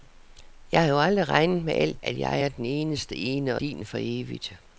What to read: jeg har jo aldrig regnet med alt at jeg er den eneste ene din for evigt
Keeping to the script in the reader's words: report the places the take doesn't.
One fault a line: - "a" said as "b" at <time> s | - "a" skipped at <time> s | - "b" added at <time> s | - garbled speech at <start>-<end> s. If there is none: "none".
none